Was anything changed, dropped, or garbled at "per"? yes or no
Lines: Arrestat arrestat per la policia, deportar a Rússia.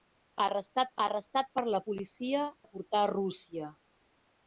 no